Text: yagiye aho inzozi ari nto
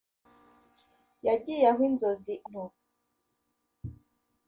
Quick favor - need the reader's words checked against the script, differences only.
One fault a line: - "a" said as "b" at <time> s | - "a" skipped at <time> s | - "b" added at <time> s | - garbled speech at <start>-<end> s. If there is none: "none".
- "ari" skipped at 2.3 s